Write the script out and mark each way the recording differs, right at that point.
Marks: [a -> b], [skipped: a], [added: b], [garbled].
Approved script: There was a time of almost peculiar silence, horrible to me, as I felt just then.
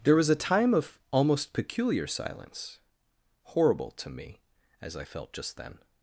There was a time of almost peculiar silence, horrible to me, as I felt just then.